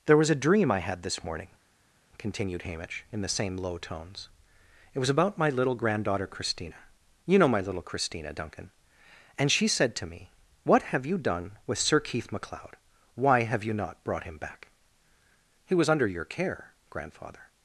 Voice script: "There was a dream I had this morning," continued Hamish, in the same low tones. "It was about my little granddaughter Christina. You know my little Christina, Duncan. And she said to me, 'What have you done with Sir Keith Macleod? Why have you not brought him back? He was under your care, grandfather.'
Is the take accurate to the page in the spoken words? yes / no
yes